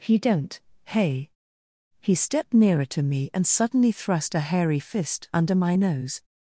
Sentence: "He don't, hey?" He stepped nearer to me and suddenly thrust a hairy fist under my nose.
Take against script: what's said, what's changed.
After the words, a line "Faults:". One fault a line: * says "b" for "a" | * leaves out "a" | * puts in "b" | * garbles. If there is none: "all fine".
"He don't, hey?" He stepped nearer to me and suddenly thrust a hairy fist under my nose.
Faults:
all fine